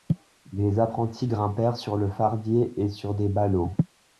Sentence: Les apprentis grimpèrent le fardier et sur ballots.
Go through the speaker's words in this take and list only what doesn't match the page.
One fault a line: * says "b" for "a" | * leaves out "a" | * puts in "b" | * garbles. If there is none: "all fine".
* puts in "sur"
* puts in "des"